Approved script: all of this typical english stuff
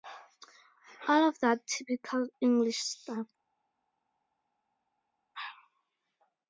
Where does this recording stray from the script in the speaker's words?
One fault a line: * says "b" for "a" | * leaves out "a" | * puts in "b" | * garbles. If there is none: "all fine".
* says "that" for "this"